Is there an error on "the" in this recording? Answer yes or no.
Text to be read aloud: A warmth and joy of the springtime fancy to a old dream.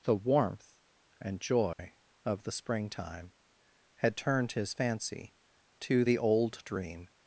no